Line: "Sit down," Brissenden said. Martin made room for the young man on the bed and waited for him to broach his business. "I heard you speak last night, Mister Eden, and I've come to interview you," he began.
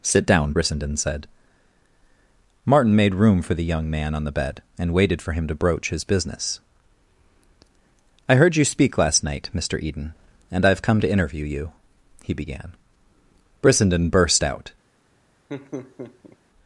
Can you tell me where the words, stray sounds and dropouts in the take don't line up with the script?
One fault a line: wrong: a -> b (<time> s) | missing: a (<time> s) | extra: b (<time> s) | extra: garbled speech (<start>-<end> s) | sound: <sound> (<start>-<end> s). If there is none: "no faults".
extra: Brissenden burst out (13.6 s)
sound: laugh (15.5-16.4 s)